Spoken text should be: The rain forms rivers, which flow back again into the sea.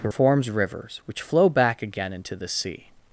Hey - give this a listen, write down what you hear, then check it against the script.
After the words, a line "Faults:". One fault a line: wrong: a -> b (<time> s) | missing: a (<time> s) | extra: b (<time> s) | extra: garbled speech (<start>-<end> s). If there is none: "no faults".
The forms rivers, which flow back again into the sea.
Faults:
missing: rain (0.1 s)